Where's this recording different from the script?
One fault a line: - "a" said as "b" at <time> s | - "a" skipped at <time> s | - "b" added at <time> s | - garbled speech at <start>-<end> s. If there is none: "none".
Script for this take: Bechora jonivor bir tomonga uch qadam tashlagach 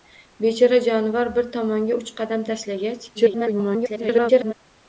- garbled speech at 3.1-4.5 s